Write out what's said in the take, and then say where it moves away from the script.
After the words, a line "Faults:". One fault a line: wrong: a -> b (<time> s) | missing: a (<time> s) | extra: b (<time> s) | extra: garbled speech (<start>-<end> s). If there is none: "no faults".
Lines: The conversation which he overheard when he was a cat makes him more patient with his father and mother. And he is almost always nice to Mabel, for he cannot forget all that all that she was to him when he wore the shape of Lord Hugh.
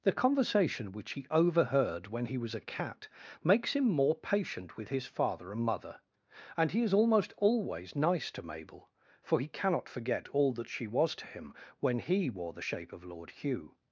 The conversation which he overheard when he was a cat makes him more patient with his father and mother. And he is almost always nice to Mabel, for he cannot forget all that she was to him when he wore the shape of Lord Hugh.
Faults:
missing: all that (10.7 s)